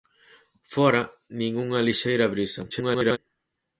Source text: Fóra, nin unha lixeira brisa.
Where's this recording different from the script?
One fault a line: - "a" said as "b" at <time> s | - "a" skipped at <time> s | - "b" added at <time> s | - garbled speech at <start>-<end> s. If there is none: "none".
- garbled speech at 2.7-3.2 s